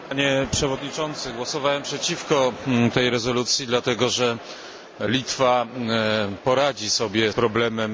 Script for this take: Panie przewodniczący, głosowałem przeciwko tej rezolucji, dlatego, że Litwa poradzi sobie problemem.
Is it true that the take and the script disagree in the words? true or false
false